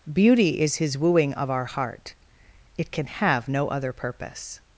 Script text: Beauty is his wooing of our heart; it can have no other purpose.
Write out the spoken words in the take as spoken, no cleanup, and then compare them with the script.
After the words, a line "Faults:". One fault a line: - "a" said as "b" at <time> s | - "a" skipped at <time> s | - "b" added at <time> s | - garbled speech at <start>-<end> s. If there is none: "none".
Beauty is his wooing of our heart; it can have no other purpose.
Faults:
none